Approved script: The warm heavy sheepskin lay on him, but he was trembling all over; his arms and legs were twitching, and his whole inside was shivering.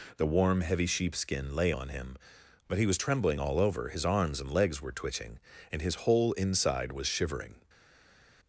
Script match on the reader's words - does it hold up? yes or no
yes